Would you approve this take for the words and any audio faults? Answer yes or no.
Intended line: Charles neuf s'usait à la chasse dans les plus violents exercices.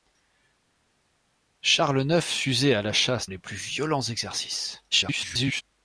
no